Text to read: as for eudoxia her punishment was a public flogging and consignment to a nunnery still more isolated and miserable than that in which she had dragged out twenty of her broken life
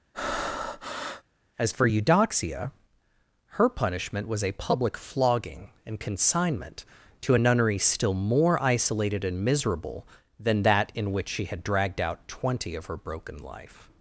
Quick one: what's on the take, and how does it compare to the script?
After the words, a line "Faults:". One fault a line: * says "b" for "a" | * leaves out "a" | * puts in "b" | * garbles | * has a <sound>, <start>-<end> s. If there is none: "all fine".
as for eudoxia her punishment was a public flogging and consignment to a nunnery still more isolated and miserable than that in which she had dragged out twenty of her broken life
Faults:
* has a breath, 0.1-1.2 s